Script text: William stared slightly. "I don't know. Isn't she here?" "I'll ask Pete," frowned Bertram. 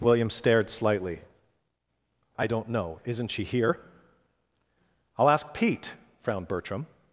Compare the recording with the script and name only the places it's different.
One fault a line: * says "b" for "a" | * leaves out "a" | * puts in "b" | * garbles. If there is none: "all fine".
all fine